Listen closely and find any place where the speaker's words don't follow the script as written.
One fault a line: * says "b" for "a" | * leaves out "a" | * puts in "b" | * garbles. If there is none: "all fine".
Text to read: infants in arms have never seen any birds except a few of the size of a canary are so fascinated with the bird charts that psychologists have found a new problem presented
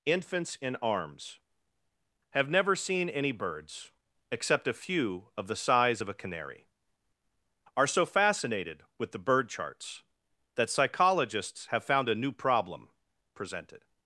all fine